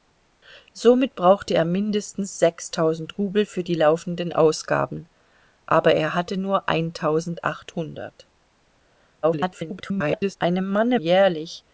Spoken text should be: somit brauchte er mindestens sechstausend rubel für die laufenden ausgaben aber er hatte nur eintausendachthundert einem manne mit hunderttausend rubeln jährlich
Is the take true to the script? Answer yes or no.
no